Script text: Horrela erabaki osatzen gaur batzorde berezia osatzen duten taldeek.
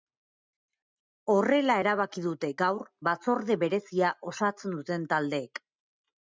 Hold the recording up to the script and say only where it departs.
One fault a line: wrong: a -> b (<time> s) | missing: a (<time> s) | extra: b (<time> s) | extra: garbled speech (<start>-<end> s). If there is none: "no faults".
wrong: osatzen -> dute (2.3 s)